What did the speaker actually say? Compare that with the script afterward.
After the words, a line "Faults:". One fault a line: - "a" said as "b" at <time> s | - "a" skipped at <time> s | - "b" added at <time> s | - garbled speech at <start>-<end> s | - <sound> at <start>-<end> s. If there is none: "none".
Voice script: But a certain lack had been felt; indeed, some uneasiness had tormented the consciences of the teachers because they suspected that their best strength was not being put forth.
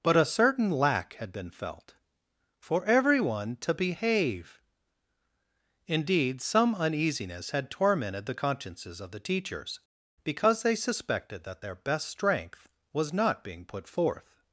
But a certain lack had been felt; for everyone to behave indeed, some uneasiness had tormented the consciences of the teachers because they suspected that their best strength was not being put forth.
Faults:
- "for everyone to behave" added at 2.6 s